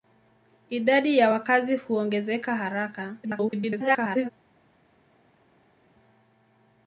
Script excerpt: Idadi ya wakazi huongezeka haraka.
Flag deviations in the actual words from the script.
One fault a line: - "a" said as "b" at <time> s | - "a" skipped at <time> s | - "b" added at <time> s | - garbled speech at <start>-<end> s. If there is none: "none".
- garbled speech at 3.2-4.3 s